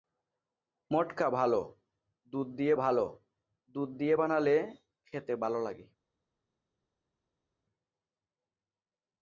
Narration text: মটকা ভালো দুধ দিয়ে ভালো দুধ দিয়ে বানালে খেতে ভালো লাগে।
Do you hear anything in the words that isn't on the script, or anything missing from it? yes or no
no